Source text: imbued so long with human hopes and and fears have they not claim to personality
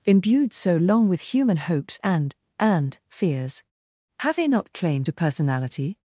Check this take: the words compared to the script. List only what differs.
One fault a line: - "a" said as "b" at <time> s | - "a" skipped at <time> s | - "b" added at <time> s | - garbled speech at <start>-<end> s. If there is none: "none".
none